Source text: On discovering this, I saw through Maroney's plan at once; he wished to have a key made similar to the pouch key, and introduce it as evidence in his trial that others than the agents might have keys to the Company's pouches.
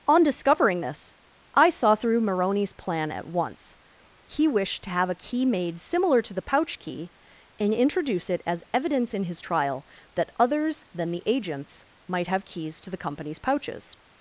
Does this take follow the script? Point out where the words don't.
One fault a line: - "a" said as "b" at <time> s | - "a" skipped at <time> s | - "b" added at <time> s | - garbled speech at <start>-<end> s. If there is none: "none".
none